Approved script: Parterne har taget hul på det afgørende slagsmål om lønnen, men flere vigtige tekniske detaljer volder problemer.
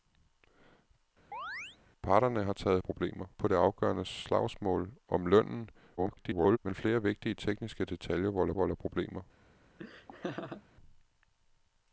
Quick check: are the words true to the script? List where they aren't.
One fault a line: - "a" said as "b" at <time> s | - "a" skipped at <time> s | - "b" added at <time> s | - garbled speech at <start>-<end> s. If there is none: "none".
- "hul" said as "problemer" at 2.8 s
- garbled speech at 6.0-6.6 s
- "volder" added at 8.5 s